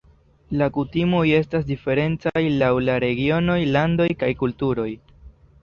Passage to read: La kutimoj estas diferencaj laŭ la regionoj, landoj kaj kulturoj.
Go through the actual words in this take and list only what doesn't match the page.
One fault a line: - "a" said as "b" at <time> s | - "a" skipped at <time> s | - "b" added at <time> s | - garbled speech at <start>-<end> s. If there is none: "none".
none